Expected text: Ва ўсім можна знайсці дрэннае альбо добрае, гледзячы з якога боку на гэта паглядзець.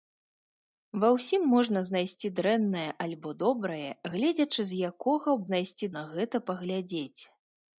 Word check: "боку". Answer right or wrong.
wrong